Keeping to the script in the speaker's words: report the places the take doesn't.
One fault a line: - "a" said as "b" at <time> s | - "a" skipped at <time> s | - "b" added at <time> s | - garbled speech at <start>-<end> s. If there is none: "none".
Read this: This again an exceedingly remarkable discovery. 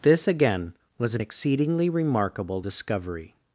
- "was" added at 1.0 s